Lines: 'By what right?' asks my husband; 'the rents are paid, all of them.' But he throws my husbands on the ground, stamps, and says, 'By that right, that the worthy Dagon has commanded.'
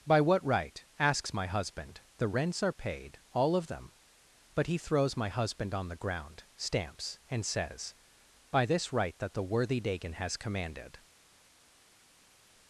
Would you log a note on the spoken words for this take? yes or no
yes